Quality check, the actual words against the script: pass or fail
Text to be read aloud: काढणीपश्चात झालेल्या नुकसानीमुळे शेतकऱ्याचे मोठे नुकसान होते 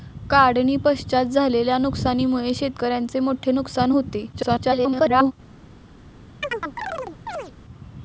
fail